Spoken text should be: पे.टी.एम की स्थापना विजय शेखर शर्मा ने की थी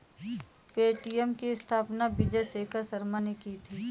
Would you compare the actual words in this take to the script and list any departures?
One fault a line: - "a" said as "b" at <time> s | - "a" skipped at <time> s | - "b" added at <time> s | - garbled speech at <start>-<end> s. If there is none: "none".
none